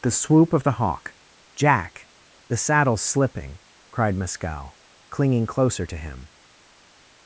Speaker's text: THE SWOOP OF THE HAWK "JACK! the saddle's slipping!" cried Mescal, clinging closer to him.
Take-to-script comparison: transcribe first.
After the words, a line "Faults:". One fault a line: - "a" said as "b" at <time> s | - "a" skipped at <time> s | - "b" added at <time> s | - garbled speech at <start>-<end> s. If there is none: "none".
THE SWOOP OF THE HAWK "JACK! the saddle's slipping!" cried Mescal, clinging closer to him.
Faults:
none